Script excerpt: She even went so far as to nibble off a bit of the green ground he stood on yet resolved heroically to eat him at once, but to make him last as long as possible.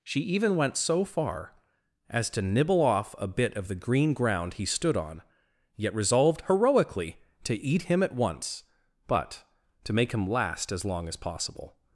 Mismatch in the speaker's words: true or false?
false